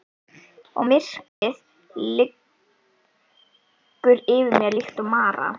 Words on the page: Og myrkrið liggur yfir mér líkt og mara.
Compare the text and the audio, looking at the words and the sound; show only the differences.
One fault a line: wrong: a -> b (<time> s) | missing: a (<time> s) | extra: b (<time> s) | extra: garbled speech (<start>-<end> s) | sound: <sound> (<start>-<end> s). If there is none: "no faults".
sound: dropout (1.3-1.4 s)